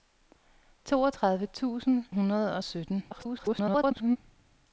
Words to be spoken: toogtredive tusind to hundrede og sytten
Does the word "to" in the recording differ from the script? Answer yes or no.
yes